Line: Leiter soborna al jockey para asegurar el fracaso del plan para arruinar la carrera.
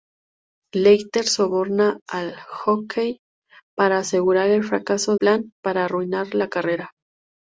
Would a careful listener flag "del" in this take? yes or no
yes